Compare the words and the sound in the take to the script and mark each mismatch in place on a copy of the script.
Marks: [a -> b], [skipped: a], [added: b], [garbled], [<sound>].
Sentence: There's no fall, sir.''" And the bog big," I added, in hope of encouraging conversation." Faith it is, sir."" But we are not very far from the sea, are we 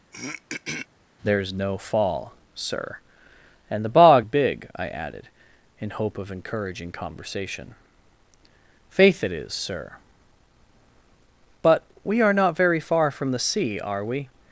[throat clearing] There's no fall, sir.''" And the bog big," I added, in hope of encouraging conversation." Faith it is, sir."" But we are not very far from the sea, are we